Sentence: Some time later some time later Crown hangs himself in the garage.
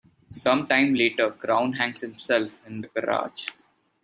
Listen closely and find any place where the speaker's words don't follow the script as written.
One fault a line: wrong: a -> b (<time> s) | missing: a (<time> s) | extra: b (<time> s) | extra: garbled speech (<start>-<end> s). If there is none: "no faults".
missing: some time later (1.3 s)